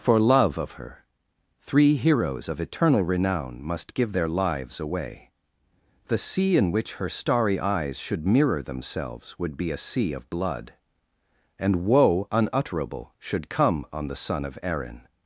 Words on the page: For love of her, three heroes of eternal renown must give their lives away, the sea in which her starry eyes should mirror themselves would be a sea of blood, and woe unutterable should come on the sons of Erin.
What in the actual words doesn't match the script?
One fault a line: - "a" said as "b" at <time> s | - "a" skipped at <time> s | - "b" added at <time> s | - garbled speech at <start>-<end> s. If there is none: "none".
- "sons" said as "son" at 14.2 s